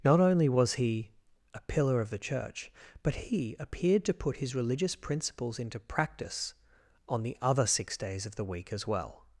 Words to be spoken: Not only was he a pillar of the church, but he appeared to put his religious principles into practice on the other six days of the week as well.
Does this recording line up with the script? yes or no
yes